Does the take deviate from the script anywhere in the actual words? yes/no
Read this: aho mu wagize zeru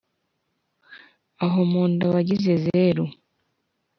yes